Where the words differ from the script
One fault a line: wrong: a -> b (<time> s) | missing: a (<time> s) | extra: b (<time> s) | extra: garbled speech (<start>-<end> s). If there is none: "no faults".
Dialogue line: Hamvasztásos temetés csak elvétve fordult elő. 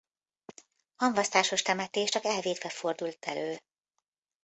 no faults